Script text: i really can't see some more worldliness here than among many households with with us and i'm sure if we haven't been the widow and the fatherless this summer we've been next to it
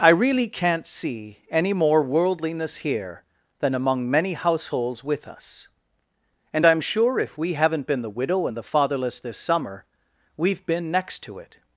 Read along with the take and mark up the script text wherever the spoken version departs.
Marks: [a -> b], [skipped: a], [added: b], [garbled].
i really can't see [some -> any] more worldliness here than among many households with [skipped: with] us and i'm sure if we haven't been the widow and the fatherless this summer we've been next to it